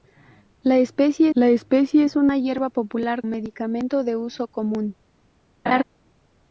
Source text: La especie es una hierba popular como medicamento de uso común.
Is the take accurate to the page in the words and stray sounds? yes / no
no